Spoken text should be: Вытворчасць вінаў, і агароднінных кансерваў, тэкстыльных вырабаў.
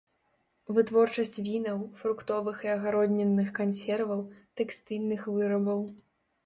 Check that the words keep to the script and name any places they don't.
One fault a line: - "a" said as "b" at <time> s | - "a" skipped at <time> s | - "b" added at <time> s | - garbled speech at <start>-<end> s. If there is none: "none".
- "фруктовых" added at 2.0 s